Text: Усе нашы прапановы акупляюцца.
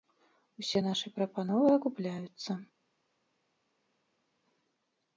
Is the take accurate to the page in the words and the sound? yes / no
yes